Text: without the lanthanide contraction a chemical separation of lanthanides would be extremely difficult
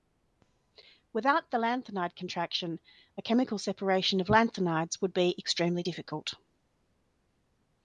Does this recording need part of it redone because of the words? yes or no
no